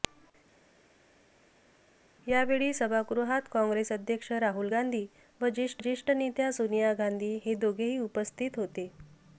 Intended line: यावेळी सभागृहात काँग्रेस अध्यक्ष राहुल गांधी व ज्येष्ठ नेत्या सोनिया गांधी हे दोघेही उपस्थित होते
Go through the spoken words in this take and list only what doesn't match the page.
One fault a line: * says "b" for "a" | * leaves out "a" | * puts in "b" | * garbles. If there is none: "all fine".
* puts in "ज्येष्ठ"